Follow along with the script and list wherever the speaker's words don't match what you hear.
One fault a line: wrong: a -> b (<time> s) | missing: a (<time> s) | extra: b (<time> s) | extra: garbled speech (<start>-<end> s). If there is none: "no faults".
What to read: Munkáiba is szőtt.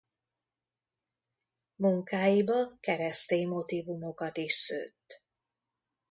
extra: keresztény motívumokat (2.8 s)